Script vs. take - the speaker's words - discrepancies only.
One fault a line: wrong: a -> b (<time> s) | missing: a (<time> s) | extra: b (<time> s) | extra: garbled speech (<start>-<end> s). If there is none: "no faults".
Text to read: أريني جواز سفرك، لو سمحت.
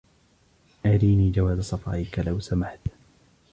no faults